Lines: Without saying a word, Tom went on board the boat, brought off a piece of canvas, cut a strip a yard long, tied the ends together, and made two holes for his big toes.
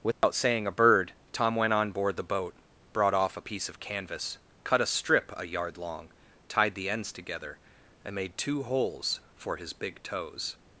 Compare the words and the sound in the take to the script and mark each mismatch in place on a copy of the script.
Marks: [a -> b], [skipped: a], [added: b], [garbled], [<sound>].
Without [dropout] saying a [word, -> bird] Tom went on board the boat, brought off a piece of canvas, cut a strip a yard long, tied the ends together, and made two holes for his big toes.